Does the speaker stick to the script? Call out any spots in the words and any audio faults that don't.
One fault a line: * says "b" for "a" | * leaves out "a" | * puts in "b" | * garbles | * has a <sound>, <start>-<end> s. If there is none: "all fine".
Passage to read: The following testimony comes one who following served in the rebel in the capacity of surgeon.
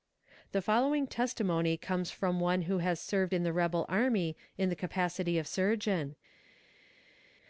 * puts in "from"
* says "has" for "following"
* puts in "army"